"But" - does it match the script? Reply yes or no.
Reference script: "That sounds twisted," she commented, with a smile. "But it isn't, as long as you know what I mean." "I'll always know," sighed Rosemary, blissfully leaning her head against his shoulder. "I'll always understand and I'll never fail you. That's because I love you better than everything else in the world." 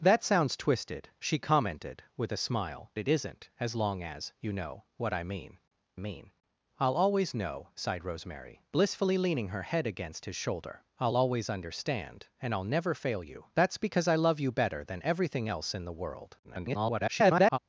no